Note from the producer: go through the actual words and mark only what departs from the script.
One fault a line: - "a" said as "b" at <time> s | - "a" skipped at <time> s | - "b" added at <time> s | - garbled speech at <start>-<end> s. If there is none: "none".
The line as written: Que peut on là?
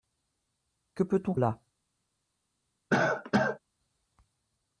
none